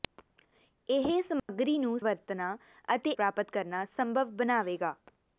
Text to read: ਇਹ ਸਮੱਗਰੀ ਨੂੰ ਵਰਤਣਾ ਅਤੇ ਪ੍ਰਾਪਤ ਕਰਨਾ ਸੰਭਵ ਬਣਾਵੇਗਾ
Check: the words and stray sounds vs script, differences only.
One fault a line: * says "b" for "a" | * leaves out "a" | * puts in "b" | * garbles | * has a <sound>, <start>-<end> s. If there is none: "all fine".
* has a dropout, 1.4-1.5 s